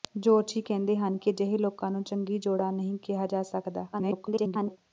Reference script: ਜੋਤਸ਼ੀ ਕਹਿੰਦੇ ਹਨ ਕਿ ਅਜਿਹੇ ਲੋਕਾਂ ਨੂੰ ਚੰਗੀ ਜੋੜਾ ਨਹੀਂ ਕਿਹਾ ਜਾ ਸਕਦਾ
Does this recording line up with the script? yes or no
no